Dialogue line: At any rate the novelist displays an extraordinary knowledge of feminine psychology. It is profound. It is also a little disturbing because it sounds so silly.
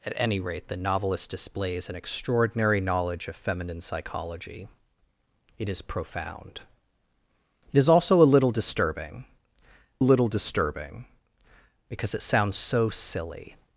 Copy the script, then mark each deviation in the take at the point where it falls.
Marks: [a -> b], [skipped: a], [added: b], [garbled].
At any rate the novelist displays an extraordinary knowledge of feminine psychology. It is profound. It is also a little disturbing [added: little disturbing] because it sounds so silly.